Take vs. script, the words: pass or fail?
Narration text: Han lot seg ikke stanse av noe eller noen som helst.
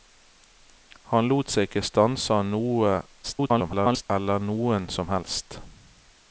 fail